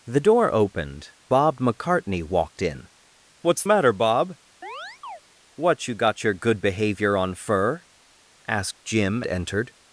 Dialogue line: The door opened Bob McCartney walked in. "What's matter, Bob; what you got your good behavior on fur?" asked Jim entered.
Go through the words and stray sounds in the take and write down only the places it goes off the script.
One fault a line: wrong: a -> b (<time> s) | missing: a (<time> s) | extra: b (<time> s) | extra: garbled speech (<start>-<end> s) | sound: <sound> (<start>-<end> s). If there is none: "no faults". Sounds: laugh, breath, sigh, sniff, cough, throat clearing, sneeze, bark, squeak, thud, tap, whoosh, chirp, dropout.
sound: chirp (4.6-5.2 s)